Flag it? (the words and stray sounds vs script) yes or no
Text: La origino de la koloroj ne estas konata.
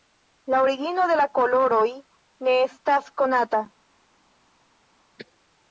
no